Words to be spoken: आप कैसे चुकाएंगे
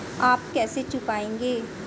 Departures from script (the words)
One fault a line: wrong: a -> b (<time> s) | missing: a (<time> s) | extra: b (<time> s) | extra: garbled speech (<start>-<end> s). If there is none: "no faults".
no faults